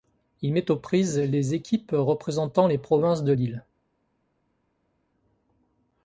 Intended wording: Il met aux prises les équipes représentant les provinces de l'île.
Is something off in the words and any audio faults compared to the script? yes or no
no